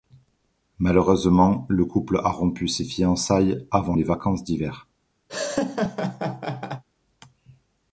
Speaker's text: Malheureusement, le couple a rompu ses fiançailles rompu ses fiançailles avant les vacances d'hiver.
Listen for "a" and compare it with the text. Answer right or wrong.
right